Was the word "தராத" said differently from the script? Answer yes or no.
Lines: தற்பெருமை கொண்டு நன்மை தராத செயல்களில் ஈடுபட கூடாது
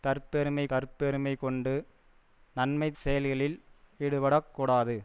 yes